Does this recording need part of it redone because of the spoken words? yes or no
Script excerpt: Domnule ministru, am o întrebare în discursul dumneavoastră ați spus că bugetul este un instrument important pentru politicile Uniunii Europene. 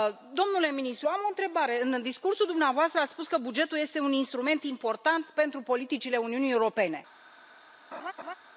no